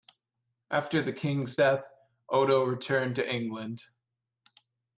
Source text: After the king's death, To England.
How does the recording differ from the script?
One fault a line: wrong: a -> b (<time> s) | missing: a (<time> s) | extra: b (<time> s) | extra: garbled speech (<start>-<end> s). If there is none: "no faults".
extra: Odo returned (2.3 s)